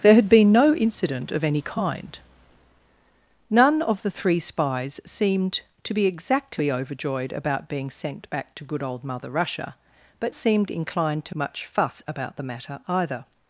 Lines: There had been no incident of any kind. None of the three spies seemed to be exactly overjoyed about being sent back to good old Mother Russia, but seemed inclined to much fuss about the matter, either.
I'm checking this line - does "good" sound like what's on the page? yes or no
yes